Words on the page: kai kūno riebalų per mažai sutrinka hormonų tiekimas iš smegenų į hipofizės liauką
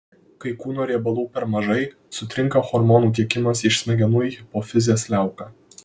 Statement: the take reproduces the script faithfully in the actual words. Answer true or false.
true